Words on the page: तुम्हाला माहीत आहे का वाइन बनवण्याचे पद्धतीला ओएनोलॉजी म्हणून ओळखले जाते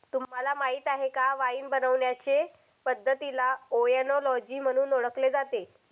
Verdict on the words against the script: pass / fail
pass